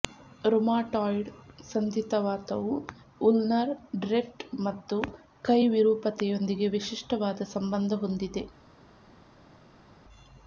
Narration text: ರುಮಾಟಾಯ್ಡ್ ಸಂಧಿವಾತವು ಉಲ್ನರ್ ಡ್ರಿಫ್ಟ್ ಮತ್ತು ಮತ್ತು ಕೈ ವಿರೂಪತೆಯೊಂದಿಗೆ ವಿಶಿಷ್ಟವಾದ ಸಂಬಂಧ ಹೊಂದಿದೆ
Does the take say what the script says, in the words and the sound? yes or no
no